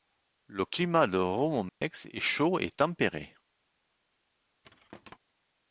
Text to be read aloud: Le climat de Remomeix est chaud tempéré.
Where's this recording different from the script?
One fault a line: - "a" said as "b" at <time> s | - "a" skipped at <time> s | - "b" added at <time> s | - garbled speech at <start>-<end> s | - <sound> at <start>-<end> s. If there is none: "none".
- dropout at 1.7-1.8 s
- "et" added at 2.6 s
- thud at 4.6-5.2 s